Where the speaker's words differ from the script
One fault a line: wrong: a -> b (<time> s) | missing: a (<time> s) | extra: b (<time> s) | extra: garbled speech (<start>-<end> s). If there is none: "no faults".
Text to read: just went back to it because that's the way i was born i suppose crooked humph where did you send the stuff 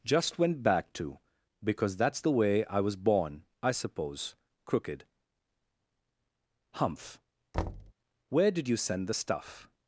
missing: it (1.2 s)